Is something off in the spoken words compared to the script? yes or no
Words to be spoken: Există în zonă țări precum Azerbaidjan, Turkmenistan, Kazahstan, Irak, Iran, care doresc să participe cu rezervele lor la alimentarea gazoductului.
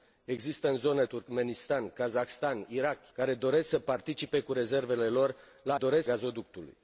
yes